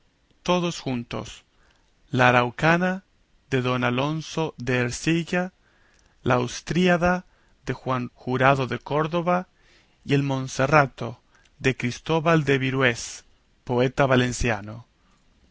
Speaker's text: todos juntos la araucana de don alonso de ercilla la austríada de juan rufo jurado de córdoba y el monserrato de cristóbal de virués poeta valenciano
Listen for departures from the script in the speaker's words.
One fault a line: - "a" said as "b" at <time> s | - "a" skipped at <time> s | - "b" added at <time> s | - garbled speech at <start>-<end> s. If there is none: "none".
- "rufo" skipped at 8.1 s